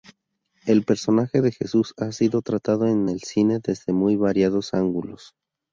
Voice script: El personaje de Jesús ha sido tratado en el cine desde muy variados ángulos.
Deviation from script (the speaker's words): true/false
false